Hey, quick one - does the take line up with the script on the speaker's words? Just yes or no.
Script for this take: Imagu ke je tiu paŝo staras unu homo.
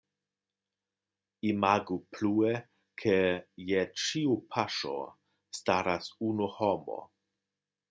no